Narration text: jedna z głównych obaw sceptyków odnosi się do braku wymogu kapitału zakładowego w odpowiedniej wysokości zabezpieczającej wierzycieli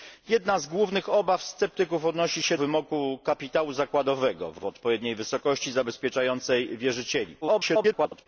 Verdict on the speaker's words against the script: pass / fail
fail